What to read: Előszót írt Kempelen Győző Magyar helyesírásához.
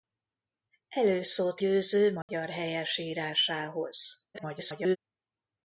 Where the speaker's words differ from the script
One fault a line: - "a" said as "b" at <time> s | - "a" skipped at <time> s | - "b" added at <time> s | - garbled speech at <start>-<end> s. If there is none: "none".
- "írt Kempelen" skipped at 1.6 s
- garbled speech at 4.3-5.0 s